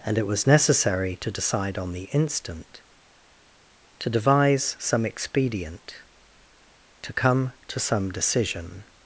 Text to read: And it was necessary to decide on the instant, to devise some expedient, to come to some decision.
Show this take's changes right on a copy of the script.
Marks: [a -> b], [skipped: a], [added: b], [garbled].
And it was necessary to decide on the instant, to devise some expedient, to come to some decision.